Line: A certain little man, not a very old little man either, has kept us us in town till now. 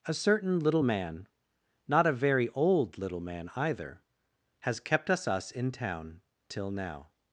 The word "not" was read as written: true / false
true